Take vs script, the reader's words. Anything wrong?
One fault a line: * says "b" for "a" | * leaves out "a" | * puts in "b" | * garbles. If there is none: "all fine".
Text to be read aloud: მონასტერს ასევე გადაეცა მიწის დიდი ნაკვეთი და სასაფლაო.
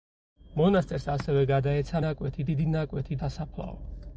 * says "ნაკვეთი" for "მიწის"
* leaves out "და"